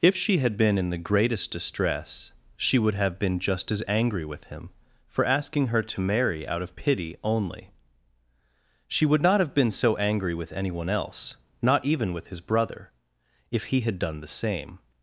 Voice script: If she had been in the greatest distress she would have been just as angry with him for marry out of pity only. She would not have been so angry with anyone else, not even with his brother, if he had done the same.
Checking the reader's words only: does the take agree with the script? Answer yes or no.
no